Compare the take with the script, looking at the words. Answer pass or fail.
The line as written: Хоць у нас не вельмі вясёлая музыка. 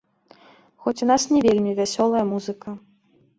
pass